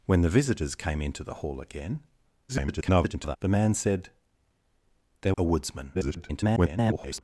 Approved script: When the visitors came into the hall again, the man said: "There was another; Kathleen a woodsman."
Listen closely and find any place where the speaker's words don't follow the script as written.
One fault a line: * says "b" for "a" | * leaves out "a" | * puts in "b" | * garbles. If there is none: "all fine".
* garbles
* leaves out "was another Kathleen"
* garbles